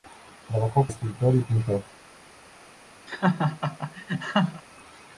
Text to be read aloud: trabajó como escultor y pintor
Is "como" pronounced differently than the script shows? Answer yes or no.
yes